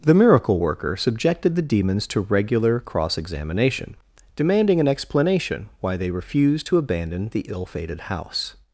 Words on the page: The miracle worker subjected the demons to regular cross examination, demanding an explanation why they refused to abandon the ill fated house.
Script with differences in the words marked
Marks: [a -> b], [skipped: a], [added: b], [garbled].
The miracle worker subjected the demons to regular cross examination, demanding an explanation why they refused to abandon the ill fated house.